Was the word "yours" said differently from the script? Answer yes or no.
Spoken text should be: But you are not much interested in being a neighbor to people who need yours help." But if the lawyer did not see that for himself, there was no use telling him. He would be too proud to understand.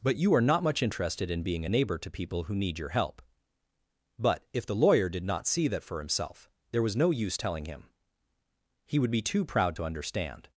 yes